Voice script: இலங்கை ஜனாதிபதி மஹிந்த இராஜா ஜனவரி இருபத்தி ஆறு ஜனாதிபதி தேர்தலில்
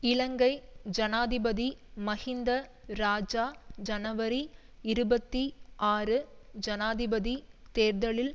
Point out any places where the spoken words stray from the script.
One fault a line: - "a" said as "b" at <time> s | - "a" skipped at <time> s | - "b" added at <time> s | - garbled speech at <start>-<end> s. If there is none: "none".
none